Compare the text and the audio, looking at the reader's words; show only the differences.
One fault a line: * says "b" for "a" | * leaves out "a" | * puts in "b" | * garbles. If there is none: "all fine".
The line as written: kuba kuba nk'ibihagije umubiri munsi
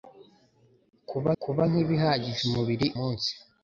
all fine